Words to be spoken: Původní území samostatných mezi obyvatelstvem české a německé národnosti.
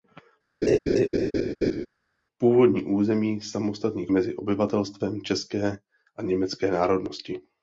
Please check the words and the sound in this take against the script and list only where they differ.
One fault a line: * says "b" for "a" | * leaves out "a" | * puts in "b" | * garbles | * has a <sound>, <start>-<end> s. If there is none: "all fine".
* has a laugh, 0.6-1.9 s